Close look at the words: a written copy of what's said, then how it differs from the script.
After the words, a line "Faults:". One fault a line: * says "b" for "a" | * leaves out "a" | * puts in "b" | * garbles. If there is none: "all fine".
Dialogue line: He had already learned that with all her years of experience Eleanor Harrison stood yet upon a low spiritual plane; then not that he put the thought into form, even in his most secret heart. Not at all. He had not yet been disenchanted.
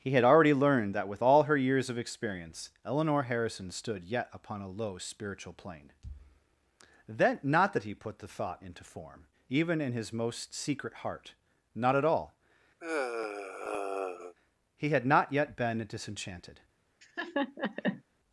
He had already learned that with all her years of experience Eleanor Harrison stood yet upon a low spiritual plane; then not that he put the thought into form, even in his most secret heart. Not at all. He had not yet been disenchanted.
Faults:
all fine